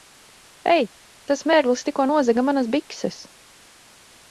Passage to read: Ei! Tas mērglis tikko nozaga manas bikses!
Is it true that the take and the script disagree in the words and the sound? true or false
false